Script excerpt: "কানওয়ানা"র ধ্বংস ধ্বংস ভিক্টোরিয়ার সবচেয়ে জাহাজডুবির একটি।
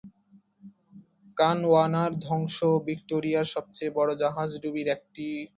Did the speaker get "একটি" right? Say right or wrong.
right